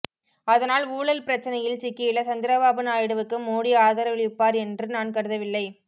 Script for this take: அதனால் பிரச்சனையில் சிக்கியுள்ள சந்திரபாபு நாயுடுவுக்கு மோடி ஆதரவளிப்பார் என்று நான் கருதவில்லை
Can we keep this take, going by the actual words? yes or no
no